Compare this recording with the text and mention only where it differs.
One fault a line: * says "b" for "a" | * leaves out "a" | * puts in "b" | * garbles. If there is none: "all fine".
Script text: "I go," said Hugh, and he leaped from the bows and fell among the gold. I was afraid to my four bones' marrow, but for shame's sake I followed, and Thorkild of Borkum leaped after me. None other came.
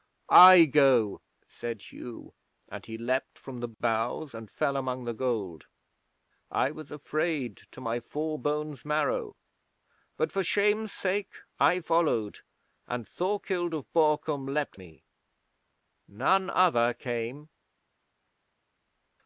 * leaves out "after"